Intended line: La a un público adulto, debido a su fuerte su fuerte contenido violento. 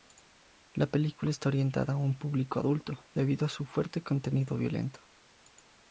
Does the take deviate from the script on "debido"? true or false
false